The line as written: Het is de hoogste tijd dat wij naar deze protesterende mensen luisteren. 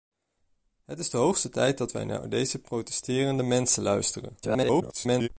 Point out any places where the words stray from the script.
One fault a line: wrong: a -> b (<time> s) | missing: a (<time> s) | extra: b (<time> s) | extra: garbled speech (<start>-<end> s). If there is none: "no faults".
extra: garbled speech (4.4-5.3 s)